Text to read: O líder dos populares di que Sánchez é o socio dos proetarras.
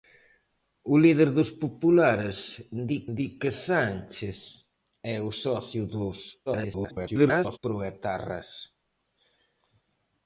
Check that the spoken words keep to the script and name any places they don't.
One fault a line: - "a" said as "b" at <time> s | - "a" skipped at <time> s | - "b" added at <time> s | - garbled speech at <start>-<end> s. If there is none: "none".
- "di" added at 3.2 s
- garbled speech at 6.5-7.6 s